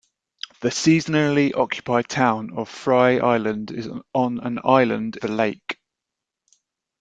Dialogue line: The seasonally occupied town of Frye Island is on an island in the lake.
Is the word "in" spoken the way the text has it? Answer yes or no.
no